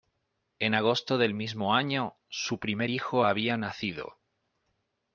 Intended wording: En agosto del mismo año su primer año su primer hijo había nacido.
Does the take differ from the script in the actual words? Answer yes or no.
yes